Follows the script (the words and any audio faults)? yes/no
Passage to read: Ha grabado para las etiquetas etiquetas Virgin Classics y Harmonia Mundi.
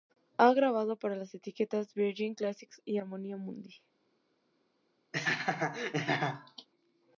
no